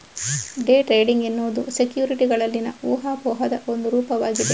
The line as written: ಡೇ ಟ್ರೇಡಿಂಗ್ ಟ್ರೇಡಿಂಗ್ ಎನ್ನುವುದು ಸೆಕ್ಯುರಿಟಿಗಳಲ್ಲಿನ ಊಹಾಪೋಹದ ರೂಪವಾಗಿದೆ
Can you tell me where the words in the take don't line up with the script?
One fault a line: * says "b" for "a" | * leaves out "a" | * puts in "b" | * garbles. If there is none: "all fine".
* leaves out "ಟ್ರೇಡಿಂಗ್"
* puts in "ಒಂದು"